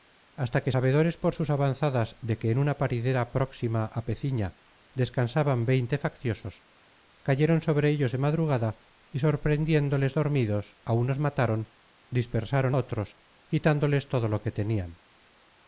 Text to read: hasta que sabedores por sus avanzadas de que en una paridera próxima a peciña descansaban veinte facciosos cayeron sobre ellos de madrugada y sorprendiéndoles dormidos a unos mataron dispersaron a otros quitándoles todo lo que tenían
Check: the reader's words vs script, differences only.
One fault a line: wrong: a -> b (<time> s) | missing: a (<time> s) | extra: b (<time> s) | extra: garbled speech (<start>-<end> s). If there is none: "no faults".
missing: a (12.8 s)